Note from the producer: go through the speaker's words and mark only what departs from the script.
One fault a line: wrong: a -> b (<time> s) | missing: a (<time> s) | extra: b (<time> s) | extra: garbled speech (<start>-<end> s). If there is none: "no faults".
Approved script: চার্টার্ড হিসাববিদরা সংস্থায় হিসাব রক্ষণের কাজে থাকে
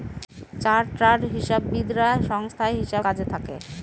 missing: রক্ষণের (3.0 s)